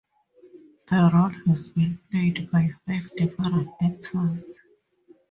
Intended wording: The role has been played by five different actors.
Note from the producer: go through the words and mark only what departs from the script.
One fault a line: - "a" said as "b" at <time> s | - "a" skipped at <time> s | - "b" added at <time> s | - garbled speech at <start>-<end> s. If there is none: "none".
none